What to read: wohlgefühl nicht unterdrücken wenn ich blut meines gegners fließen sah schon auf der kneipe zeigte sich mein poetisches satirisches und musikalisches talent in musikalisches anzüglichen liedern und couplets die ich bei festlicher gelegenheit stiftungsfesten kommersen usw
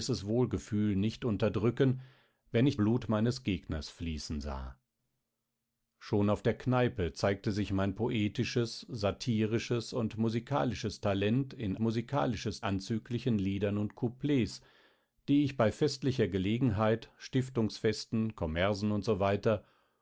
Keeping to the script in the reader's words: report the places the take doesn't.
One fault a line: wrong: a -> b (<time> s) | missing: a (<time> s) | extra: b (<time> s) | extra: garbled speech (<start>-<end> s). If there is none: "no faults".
no faults